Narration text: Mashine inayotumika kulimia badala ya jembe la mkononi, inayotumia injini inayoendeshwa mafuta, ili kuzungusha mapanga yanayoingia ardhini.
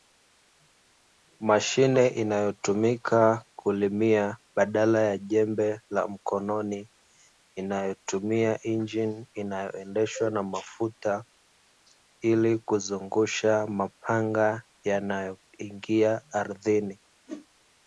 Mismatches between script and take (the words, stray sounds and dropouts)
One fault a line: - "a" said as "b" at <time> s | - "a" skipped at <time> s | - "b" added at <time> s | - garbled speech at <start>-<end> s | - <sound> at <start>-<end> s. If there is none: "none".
- "na" added at 10.3 s
- whoosh at 17.3-17.5 s